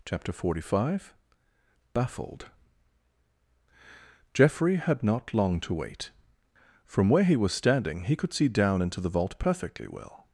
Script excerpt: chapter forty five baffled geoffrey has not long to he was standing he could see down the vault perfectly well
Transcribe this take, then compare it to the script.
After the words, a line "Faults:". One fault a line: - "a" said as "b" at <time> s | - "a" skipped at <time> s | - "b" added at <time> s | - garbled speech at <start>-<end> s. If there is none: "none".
chapter forty five baffled geoffrey had not long to wait from where he was standing he could see down into the vault perfectly well
Faults:
- "has" said as "had" at 4.8 s
- "wait from where" added at 5.7 s
- "into" added at 8.8 s